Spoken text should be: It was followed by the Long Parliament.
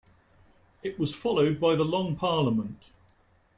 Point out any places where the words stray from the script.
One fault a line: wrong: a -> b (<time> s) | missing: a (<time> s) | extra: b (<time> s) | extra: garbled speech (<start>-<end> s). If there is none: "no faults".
no faults